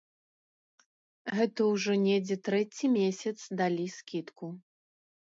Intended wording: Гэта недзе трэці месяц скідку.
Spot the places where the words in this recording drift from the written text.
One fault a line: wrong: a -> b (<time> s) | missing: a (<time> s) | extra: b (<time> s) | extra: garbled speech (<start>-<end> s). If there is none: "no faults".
extra: ўжо (1.7 s)
extra: далі (3.6 s)